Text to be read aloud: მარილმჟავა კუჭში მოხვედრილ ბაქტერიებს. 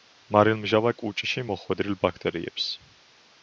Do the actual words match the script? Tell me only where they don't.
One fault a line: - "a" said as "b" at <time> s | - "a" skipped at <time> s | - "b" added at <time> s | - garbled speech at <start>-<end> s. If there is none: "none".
none